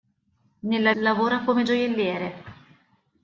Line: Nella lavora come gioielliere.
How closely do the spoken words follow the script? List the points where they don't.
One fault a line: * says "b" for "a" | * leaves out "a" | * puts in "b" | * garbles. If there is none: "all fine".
all fine